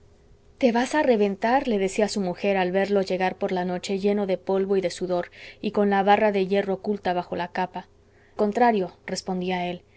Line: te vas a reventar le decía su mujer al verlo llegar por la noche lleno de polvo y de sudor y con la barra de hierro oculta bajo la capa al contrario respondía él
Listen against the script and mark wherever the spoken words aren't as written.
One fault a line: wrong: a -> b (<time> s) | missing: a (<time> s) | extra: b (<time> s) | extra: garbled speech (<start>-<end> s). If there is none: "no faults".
missing: al (7.9 s)